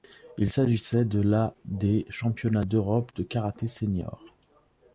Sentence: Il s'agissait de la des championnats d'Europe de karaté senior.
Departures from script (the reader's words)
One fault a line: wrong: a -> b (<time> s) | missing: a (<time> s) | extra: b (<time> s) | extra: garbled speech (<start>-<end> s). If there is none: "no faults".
no faults